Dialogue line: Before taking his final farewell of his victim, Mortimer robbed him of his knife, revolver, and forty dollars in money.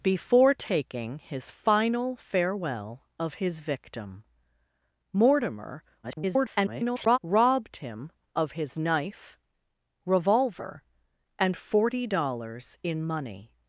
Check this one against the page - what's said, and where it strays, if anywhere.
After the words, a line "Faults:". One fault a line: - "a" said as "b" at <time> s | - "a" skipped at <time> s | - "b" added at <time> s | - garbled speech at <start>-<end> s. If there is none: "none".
Before taking his final farewell of his victim, Mortimer [garbled] robbed him of his knife, revolver, and forty dollars in money.
Faults:
- garbled speech at 6.0-7.2 s